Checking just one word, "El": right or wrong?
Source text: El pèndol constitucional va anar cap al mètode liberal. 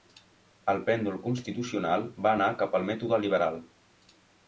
right